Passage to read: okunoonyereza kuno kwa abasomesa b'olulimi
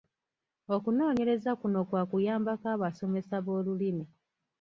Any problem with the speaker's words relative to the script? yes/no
yes